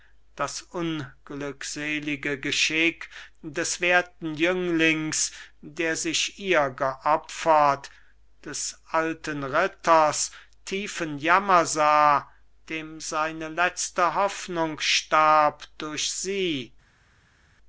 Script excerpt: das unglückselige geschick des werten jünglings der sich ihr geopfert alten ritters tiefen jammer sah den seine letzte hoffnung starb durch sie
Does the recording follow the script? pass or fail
fail